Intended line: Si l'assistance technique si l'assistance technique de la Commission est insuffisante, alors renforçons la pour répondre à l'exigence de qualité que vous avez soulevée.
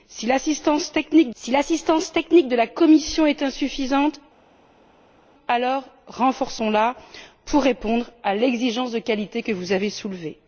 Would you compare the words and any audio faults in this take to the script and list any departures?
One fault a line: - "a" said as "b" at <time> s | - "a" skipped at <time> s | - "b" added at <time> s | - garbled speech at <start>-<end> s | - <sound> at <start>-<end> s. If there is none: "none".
none